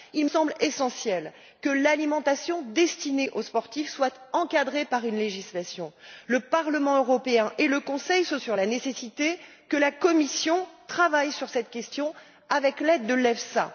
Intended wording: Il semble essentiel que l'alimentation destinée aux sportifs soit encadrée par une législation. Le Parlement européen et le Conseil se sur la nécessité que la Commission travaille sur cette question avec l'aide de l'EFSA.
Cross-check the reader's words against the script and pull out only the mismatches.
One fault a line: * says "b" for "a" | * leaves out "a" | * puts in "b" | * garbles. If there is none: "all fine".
all fine